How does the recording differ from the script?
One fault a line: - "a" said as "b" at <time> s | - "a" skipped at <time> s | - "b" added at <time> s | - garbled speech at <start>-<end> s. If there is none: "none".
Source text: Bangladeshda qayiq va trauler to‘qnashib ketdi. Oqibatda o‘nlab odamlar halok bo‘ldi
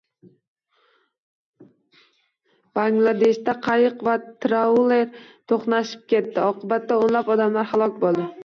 none